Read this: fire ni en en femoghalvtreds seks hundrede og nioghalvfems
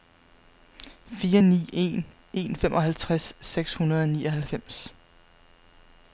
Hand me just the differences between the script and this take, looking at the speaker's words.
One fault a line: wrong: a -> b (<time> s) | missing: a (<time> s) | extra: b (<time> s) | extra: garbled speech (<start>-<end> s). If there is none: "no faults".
no faults